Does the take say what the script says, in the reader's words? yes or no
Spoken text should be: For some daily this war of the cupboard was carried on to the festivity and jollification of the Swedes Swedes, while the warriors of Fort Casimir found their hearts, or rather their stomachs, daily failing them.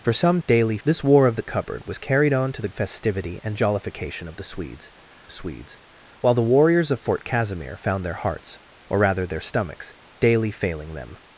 yes